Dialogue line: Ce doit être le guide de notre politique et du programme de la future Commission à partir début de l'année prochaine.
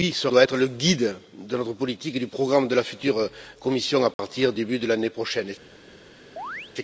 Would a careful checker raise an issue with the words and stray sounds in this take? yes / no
yes